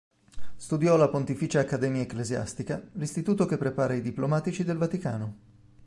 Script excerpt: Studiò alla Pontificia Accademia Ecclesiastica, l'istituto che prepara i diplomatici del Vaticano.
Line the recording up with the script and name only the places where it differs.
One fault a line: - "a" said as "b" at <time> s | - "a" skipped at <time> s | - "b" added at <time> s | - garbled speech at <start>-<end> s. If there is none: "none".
none